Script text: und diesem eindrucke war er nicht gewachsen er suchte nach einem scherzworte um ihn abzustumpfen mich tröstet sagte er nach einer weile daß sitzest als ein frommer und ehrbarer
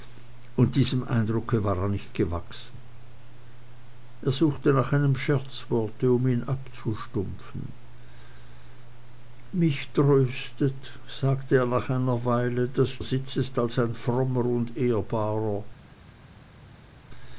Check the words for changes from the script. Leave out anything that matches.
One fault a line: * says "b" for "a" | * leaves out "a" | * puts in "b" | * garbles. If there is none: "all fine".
all fine